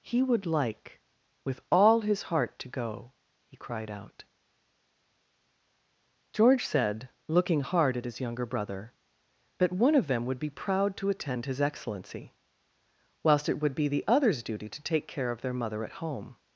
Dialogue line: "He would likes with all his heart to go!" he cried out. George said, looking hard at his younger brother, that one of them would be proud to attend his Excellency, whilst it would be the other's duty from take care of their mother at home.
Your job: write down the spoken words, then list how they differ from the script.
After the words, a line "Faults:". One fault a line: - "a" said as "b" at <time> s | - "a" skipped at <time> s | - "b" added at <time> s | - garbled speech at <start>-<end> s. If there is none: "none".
"He would like with all his heart to go!" he cried out. George said, looking hard at his younger brother, that one of them would be proud to attend his Excellency, whilst it would be the other's duty to take care of their mother at home.
Faults:
- "likes" said as "like" at 0.5 s
- "from" said as "to" at 14.7 s